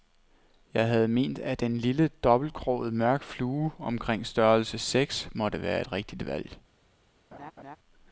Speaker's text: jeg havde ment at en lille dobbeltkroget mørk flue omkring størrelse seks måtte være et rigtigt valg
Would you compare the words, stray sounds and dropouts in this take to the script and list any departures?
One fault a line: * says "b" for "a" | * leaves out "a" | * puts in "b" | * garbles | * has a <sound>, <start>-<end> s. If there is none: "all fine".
* has a laugh, 7.3-7.8 s